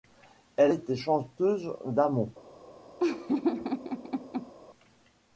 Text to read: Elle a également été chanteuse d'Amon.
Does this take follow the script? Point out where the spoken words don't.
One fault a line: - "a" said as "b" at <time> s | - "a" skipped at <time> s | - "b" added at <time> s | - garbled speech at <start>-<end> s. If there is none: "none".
- "a également" skipped at 0.7 s